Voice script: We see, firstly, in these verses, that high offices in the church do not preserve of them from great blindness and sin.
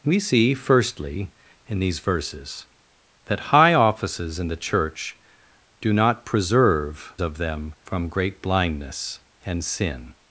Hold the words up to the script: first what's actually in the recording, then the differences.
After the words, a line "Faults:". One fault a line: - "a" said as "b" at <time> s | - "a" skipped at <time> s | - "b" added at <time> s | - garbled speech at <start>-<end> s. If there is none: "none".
We see, firstly, in these verses, that high offices in the church do not preserve of them from great blindness and sin.
Faults:
none